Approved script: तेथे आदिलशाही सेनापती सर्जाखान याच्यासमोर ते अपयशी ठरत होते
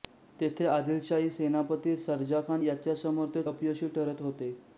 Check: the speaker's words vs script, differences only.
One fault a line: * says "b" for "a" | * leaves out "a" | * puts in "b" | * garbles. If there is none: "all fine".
all fine